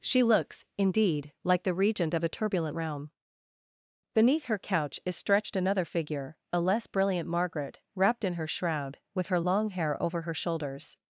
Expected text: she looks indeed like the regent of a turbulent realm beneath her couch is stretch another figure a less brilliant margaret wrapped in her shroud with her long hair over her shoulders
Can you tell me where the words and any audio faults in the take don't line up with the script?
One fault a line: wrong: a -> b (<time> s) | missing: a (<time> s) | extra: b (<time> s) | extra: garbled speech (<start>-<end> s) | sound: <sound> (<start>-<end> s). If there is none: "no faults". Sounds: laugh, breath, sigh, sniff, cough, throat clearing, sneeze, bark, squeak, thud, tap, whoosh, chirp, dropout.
wrong: stretch -> stretched (5.2 s)